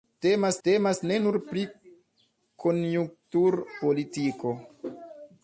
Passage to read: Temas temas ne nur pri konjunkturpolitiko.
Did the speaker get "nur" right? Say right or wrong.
right